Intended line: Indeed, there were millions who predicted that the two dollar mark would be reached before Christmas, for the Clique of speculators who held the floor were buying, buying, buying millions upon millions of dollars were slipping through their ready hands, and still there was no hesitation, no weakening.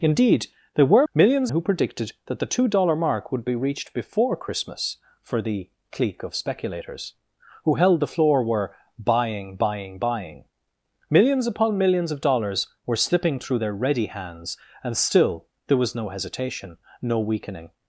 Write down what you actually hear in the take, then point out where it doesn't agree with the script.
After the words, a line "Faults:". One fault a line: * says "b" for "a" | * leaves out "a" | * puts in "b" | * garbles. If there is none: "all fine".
Indeed, there were millions who predicted that the two dollar mark would be reached before Christmas, for the Clique of speculators who held the floor were buying, buying, buying millions upon millions of dollars were slipping through their ready hands, and still there was no hesitation, no weakening.
Faults:
all fine